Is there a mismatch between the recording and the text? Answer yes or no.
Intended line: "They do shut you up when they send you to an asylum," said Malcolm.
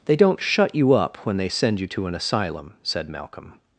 yes